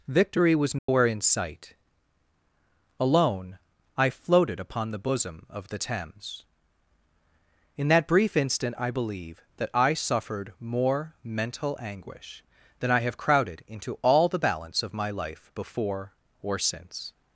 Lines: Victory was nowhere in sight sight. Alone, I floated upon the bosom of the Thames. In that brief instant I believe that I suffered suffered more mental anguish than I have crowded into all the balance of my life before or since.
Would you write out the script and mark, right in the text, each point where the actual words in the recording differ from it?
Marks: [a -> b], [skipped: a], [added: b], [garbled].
Victory was nowhere in sight [skipped: sight.] Alone, I floated upon the bosom of the Thames. In that brief instant I believe that I suffered [skipped: suffered] more mental anguish than I have crowded into all the balance of my life before or since.